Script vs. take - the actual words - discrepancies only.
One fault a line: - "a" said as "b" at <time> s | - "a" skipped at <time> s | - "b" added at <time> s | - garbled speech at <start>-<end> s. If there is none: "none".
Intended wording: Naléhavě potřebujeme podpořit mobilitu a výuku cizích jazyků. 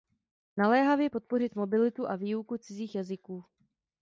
- "potřebujeme" skipped at 1.1 s